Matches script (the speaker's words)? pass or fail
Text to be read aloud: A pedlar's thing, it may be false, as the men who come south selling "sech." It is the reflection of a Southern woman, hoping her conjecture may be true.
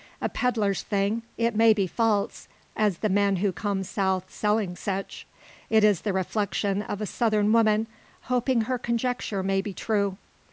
pass